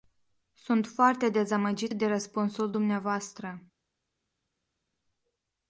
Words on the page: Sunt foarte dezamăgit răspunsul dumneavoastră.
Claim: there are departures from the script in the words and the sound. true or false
true